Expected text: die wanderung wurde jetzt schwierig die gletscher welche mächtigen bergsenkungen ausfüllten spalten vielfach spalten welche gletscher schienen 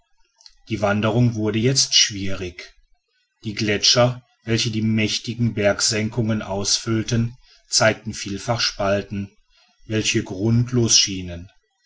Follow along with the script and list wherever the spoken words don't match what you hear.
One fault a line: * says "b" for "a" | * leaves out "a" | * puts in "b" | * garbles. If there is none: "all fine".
* puts in "die"
* says "zeigten" for "spalten"
* says "grundlos" for "gletscher"